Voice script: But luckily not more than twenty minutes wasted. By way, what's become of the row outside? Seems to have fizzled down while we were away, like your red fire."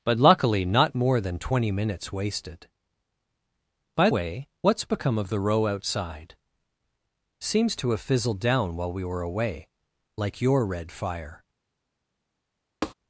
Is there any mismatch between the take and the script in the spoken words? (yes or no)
no